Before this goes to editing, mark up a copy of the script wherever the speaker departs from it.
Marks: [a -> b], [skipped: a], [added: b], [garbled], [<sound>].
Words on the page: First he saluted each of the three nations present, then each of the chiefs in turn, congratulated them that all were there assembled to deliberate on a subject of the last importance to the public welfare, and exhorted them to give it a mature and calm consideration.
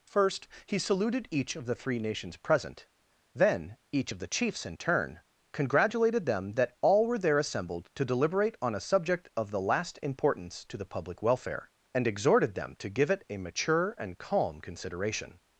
First he saluted each of the three nations present, then each of the chiefs in turn, congratulated them that all were there assembled to deliberate on a subject of the last importance to the public welfare, and exhorted them to give it a mature and calm consideration.